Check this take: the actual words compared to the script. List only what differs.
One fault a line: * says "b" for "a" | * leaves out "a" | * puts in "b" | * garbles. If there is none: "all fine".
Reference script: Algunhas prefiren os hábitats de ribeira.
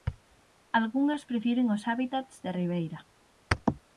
all fine